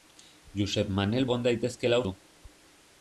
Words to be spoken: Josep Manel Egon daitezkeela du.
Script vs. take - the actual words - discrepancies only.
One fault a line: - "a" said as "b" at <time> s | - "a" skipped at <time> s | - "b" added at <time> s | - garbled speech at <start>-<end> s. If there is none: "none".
none